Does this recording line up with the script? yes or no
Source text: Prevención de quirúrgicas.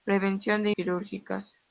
yes